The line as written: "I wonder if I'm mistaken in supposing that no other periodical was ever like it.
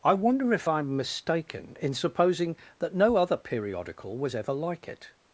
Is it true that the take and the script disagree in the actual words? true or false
false